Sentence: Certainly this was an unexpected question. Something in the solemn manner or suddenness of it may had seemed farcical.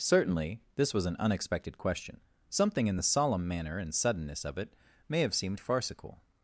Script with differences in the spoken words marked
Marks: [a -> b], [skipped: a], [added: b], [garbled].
Certainly this was an unexpected question. Something in the solemn manner [or -> and] suddenness of it may [had -> have] seemed farcical.